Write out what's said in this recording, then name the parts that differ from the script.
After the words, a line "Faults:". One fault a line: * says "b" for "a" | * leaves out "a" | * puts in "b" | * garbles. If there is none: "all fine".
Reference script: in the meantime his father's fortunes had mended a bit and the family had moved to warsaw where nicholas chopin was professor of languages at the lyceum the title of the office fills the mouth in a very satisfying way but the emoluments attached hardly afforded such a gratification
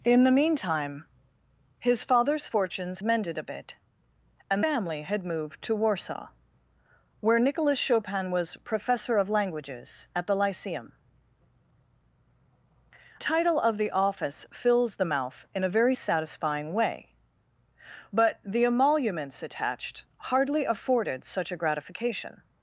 in the meantime his father's fortunes mended a bit and family had moved to warsaw where nicholas chopin was professor of languages at the lyceum title of the office fills the mouth in a very satisfying way but the emoluments attached hardly afforded such a gratification
Faults:
* leaves out "had"
* leaves out "the"
* leaves out "the"